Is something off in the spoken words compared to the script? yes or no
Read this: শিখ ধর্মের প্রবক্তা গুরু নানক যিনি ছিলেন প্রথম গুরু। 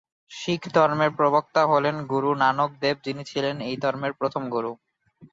yes